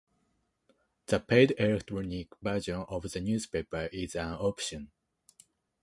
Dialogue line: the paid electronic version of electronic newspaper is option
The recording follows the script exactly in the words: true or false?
false